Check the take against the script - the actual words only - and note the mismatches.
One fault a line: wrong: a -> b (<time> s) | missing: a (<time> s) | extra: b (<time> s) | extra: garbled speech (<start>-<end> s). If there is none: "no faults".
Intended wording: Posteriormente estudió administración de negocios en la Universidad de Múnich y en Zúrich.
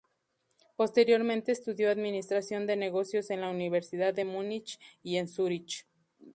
no faults